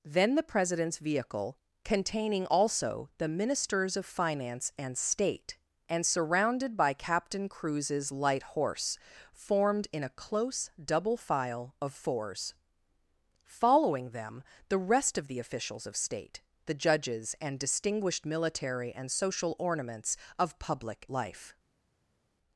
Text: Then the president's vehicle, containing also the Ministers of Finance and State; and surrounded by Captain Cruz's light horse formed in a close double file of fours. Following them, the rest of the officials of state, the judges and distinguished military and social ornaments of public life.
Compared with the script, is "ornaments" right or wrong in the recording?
right